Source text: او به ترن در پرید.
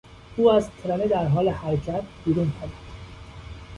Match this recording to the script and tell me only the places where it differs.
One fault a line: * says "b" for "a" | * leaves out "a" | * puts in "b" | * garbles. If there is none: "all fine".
* says "از" for "به"
* puts in "حال حرکت بیرون"